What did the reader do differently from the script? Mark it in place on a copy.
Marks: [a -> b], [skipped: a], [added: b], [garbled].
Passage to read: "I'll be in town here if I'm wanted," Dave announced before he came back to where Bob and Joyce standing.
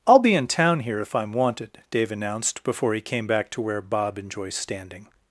"I'll be in town here if I'm wanted," Dave announced before he came back to where Bob and Joyce standing.